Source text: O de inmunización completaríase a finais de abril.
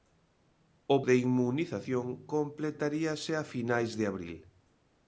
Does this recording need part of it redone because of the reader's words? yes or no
no